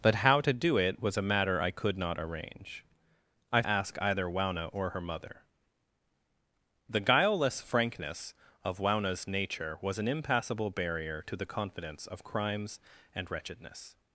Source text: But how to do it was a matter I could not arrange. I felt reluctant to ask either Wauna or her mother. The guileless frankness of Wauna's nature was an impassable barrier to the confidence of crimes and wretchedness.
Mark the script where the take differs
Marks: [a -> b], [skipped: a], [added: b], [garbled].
But how to do it was a matter I could not arrange. I [skipped: felt reluctant to] ask either Wauna or her mother. The guileless frankness of Wauna's nature was an impassable barrier to the confidence of crimes and wretchedness.